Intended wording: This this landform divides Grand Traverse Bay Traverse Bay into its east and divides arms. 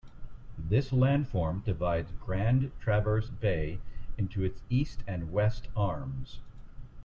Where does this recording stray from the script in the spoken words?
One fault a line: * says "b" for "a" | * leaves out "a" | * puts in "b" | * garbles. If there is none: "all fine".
* leaves out "this"
* leaves out "Traverse Bay"
* says "west" for "divides"